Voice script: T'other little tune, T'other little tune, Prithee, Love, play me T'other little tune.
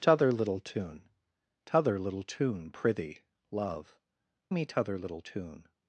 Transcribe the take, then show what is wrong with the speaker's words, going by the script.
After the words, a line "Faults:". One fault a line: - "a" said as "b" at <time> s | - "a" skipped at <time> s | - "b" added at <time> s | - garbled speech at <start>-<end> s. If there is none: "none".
T'other little tune, T'other little tune, Prithee, Love, me T'other little tune.
Faults:
- "play" skipped at 4.0 s